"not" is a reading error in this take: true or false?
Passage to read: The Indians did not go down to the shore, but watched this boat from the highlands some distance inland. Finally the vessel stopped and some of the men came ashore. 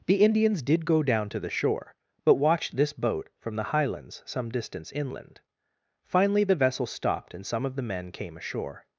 true